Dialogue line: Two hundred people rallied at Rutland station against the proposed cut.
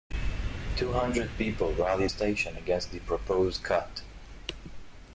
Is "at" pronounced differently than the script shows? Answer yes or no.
yes